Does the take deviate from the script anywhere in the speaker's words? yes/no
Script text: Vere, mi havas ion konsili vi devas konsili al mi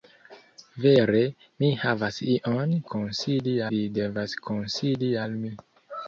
no